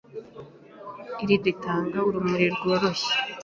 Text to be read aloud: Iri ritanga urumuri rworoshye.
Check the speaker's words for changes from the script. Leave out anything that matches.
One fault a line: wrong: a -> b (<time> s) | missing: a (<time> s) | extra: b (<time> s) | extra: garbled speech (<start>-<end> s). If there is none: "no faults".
no faults